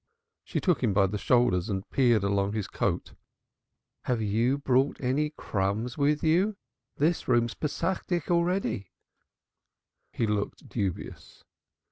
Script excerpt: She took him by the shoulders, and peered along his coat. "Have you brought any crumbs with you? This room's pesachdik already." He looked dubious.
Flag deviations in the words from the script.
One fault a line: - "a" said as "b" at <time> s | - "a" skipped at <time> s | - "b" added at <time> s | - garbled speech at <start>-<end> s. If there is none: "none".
none